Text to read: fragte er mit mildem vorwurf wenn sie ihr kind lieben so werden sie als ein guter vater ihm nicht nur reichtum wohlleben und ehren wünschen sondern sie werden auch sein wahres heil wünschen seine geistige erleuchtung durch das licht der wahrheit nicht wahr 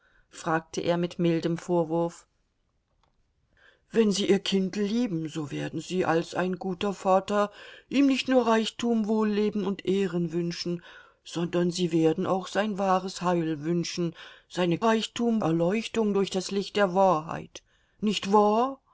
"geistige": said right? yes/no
no